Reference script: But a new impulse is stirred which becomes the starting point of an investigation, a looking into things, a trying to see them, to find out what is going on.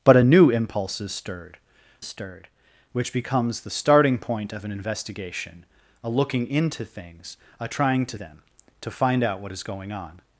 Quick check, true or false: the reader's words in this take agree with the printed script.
false